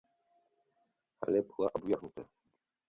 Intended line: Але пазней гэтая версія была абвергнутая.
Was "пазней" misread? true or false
true